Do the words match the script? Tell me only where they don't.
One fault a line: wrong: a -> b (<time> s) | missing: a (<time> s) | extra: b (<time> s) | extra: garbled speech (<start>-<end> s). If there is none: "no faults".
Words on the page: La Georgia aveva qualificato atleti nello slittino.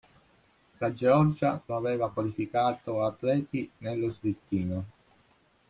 no faults